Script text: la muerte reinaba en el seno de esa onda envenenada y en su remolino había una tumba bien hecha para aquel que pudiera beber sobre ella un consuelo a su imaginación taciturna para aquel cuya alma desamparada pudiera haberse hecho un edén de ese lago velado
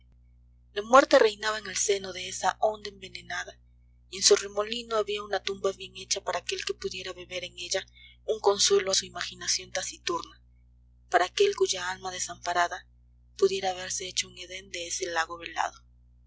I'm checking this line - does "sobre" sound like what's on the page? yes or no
no